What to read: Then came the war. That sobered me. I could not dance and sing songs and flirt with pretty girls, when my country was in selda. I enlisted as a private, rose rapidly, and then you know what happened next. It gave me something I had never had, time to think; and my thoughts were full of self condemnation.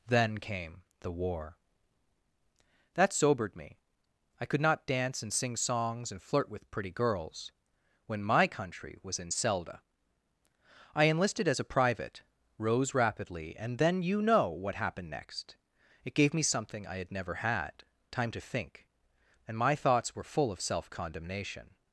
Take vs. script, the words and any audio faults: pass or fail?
pass